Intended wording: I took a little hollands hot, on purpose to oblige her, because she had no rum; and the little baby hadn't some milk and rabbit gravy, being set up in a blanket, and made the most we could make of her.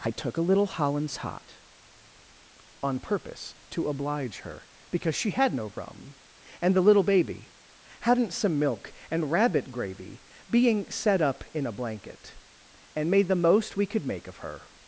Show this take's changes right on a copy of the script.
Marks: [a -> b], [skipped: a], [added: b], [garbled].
I took a little hollands hot, on purpose to oblige her, because she had no rum; and the little baby hadn't some milk and rabbit gravy, being set up in a blanket, and made the most we could make of her.